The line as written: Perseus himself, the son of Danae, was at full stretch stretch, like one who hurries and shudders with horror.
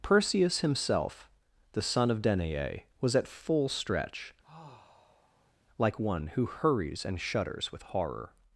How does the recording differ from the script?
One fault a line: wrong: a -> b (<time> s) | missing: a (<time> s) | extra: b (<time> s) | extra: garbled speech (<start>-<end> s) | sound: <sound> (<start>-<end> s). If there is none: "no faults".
missing: stretch (4.3 s)
sound: sigh (4.4-5.5 s)